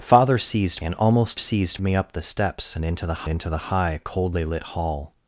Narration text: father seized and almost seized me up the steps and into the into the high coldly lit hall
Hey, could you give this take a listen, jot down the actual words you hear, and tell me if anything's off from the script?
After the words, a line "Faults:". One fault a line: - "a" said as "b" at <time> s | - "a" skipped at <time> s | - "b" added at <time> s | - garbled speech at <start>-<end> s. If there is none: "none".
father seized and almost seized me up the steps and into the into the high coldly lit hall
Faults:
none